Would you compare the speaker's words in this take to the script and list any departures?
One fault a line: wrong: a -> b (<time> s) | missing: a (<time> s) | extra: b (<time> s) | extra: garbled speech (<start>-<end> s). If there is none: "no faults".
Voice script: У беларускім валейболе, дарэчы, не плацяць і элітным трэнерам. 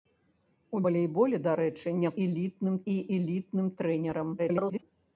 missing: беларускім (0.8 s)
wrong: плацяць -> элітным (2.2 s)
extra: garbled speech (4.4-4.8 s)